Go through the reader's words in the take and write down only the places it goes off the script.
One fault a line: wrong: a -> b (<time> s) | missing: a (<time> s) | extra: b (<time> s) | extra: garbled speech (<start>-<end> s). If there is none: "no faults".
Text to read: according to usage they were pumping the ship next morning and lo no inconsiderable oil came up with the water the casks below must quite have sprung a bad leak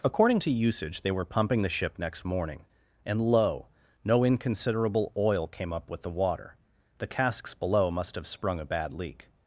missing: quite (8.1 s)